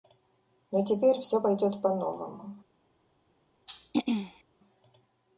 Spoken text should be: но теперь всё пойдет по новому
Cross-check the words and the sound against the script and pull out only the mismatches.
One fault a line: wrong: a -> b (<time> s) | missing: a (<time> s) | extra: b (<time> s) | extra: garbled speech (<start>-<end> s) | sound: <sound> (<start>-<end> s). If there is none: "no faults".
sound: throat clearing (3.7-4.4 s)